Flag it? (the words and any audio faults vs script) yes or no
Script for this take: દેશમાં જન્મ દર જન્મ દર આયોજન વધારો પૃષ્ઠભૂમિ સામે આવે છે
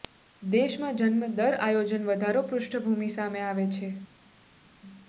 yes